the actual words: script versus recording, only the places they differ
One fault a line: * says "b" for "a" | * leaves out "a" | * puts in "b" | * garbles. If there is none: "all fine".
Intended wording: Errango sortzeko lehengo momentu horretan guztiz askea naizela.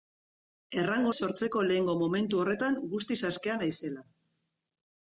all fine